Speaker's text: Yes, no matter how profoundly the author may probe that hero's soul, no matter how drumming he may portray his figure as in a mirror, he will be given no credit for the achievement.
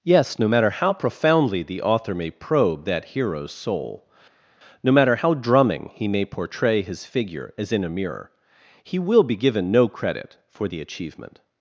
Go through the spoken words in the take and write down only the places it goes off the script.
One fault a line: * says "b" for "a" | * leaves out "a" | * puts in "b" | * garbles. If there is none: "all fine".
all fine